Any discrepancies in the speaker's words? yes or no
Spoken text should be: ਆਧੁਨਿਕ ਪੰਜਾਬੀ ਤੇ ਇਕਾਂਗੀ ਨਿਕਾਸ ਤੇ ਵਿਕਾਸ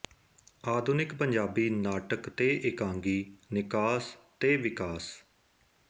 yes